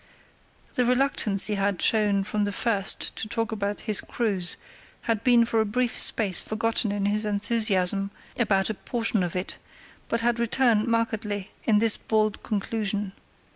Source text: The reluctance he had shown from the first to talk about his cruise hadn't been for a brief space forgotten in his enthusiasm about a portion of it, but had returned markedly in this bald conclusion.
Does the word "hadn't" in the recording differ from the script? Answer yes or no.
yes